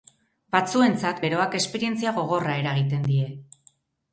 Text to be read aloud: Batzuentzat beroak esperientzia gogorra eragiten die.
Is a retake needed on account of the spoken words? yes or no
no